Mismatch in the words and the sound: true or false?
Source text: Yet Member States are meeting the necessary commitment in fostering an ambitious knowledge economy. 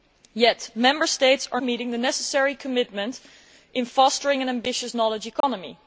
true